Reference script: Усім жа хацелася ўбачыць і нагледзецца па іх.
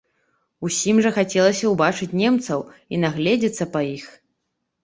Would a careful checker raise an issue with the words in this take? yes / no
yes